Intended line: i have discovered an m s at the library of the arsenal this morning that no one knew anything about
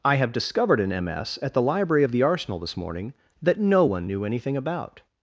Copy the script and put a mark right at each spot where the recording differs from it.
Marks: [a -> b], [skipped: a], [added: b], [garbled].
i have discovered an m s at the library of the arsenal this morning that no one knew anything about